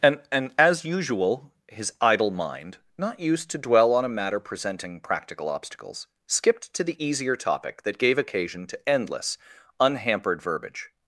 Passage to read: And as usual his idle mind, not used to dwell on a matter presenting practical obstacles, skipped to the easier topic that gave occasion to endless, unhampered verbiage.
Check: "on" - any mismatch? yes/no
no